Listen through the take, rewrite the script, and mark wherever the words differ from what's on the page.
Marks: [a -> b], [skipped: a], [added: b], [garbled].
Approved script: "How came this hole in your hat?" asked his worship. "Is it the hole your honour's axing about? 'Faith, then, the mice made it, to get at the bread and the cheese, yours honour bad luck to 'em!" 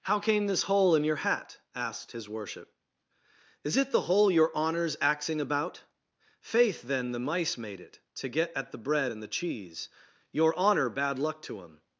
"How came this hole in your hat?" asked his worship. "Is it the hole your honour's axing about? 'Faith, then, the mice made it, to get at the bread and the cheese, [yours -> your] honour bad luck to 'em!"